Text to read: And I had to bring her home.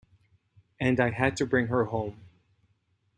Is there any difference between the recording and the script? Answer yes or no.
no